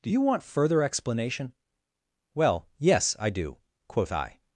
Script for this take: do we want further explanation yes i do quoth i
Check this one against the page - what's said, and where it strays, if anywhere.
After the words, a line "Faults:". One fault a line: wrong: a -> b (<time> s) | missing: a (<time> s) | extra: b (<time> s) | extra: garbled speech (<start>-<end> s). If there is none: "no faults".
do you want further explanation well yes i do quoth i
Faults:
wrong: we -> you (0.1 s)
extra: well (2.3 s)